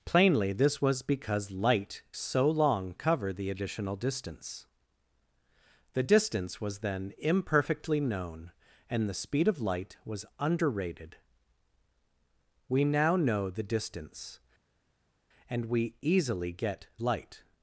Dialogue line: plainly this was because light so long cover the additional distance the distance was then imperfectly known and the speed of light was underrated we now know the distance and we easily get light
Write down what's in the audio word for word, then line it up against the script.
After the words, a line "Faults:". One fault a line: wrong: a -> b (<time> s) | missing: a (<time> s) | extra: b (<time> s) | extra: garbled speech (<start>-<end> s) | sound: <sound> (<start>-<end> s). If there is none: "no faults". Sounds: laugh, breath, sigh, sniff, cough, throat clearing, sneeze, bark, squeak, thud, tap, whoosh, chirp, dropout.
plainly this was because light so long cover the additional distance the distance was then imperfectly known and the speed of light was underrated we now know the distance and we easily get light
Faults:
no faults